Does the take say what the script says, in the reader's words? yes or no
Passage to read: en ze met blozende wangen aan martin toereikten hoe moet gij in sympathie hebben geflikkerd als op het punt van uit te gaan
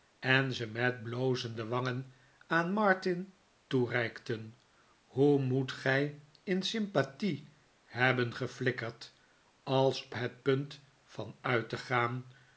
no